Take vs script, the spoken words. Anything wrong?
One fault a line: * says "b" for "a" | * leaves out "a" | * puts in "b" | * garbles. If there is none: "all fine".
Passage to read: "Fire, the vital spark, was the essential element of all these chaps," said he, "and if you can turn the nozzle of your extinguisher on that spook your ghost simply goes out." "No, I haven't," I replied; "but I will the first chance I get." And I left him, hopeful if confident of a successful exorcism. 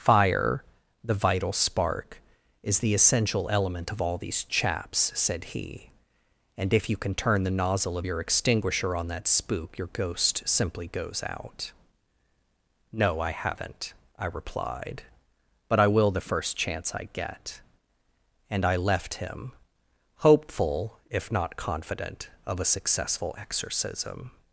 * says "is" for "was"
* puts in "not"